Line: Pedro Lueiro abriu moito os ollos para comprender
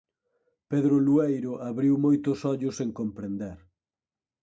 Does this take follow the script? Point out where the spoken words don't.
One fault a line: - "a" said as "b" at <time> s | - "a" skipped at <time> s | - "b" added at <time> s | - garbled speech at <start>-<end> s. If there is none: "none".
- "para" said as "sen" at 2.8 s